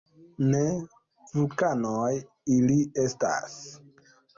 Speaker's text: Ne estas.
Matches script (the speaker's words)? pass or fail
fail